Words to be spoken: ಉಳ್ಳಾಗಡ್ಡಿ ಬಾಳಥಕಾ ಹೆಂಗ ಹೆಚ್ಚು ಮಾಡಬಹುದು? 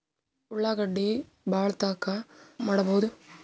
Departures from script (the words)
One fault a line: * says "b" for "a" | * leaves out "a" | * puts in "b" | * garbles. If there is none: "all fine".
* leaves out "ಹೆಂಗ ಹೆಚ್ಚು"